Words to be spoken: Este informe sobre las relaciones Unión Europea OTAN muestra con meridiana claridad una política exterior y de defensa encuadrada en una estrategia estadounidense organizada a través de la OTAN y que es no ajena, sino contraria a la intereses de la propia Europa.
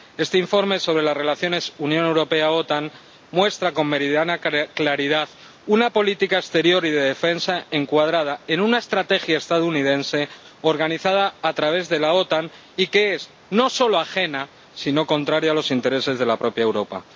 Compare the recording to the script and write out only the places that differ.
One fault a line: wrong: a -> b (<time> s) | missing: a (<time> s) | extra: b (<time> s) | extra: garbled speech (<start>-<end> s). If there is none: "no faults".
extra: solo (13.7 s)
wrong: la -> los (15.6 s)